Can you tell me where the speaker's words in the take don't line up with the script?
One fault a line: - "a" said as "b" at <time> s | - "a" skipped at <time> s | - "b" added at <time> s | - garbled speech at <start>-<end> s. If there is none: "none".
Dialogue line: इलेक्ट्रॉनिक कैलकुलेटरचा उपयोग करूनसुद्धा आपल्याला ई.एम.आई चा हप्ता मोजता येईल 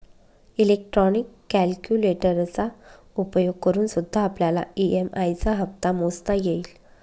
none